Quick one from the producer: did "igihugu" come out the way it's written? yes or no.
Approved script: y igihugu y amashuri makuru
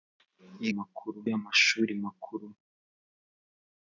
no